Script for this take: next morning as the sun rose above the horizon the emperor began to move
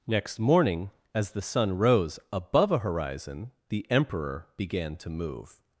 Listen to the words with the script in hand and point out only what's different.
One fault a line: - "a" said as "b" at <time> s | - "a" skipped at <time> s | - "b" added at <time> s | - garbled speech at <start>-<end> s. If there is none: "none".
- "the" said as "a" at 2.7 s